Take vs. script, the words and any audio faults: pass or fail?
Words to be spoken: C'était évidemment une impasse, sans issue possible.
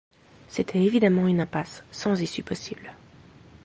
pass